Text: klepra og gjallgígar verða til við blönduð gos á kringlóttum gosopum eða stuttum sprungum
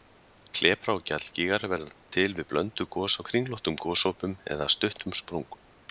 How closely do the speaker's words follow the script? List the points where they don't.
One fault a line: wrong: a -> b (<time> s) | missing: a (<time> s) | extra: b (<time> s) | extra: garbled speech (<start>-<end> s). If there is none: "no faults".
no faults